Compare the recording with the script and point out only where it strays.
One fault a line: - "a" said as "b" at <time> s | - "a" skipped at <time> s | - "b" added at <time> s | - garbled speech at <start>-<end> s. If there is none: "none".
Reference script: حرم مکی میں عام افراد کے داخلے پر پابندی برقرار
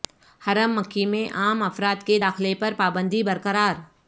none